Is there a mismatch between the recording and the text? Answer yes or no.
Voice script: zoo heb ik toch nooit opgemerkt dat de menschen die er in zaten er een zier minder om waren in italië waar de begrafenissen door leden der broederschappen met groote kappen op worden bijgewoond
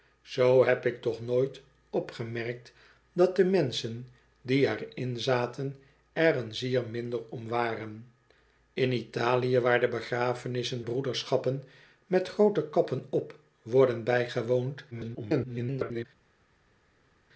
yes